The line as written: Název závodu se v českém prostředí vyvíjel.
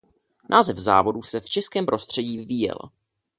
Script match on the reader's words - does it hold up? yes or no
yes